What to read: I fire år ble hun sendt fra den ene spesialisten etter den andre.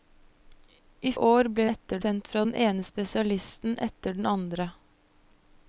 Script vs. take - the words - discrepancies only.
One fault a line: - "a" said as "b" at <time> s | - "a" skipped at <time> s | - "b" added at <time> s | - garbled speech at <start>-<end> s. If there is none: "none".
- "fire" skipped at 1.1 s
- "hun" said as "etter" at 1.7 s